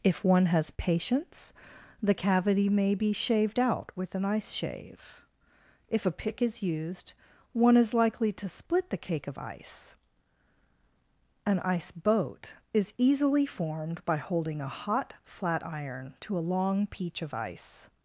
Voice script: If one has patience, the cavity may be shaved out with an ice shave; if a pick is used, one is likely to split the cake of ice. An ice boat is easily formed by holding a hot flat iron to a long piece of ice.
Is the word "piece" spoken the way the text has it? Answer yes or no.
no